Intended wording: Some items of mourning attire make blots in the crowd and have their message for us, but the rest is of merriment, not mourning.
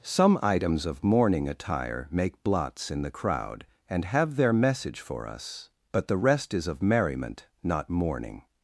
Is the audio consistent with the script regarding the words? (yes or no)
yes